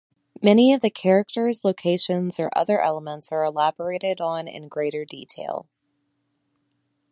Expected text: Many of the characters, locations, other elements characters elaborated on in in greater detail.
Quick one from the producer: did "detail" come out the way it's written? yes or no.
yes